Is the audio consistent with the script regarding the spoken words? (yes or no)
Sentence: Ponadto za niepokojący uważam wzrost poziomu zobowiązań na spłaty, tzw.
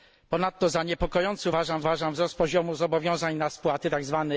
no